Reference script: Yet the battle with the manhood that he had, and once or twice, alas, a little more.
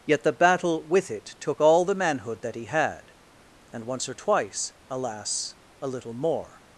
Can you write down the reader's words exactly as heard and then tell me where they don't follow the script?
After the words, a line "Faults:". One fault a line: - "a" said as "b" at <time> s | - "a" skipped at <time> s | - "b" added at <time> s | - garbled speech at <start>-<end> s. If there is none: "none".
Yet the battle with it took all the manhood that he had, and once or twice, alas, a little more.
Faults:
- "it took all" added at 1.1 s